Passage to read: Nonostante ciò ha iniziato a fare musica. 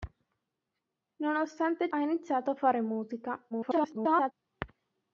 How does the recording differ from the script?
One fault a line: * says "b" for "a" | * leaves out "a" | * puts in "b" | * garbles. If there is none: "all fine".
* leaves out "ciò"
* garbles